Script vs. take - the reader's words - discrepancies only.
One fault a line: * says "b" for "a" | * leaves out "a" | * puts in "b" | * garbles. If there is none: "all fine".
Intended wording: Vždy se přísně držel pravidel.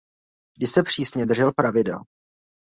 all fine